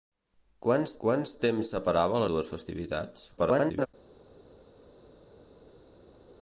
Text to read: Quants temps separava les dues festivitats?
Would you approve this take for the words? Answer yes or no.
no